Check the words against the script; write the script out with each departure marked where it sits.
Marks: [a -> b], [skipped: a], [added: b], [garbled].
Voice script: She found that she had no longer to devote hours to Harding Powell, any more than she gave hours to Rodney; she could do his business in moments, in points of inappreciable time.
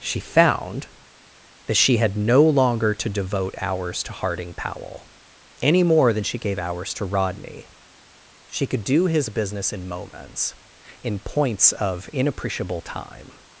She found that she had no longer to devote hours to Harding Powell, any more than she gave hours to Rodney; she could do his business in moments, in points of inappreciable time.